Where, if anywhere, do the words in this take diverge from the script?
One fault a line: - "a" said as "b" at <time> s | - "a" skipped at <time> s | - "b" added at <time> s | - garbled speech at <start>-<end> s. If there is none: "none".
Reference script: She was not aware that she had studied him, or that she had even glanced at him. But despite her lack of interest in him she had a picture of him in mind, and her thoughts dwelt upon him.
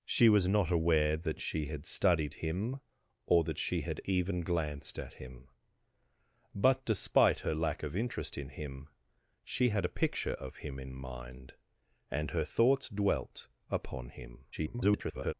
- garbled speech at 14.5-15.3 s